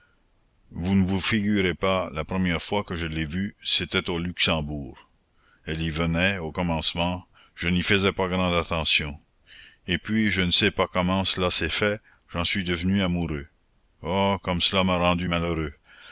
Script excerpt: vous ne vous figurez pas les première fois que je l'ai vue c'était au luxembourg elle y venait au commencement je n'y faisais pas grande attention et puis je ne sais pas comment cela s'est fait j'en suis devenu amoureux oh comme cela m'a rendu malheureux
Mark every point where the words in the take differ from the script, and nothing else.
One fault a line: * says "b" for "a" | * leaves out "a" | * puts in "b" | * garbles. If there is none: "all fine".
* says "la" for "les"